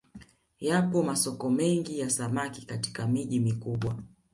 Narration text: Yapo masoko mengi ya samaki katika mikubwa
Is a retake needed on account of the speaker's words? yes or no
yes